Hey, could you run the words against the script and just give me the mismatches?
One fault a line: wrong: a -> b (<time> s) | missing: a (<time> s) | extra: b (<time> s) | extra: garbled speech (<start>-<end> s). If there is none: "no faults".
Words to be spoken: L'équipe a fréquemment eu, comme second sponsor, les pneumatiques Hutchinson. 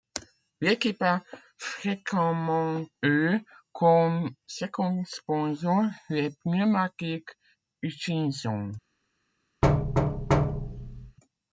no faults